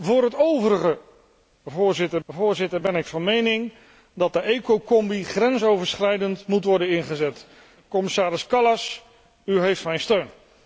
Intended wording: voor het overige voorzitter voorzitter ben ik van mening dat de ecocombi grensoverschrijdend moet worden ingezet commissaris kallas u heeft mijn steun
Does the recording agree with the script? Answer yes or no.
yes